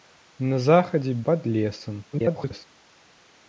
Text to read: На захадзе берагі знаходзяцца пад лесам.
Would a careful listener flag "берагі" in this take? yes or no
yes